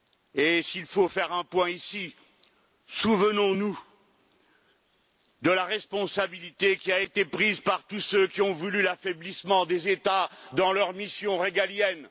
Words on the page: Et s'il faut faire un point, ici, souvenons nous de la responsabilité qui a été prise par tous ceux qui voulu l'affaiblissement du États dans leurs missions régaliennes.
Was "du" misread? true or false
true